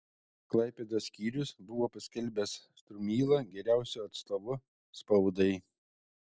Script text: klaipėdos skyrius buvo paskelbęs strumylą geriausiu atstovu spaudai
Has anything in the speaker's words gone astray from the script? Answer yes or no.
no